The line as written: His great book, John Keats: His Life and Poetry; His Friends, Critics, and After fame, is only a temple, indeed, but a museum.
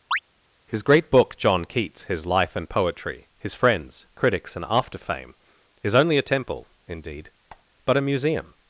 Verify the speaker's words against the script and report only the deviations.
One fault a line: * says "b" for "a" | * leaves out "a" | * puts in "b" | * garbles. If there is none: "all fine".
all fine